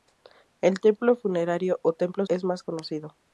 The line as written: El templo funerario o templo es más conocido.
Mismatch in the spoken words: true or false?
false